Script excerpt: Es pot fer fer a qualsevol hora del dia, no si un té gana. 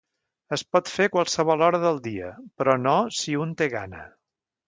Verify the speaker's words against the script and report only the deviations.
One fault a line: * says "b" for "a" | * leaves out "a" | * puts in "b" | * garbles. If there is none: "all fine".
* leaves out "fer"
* puts in "però"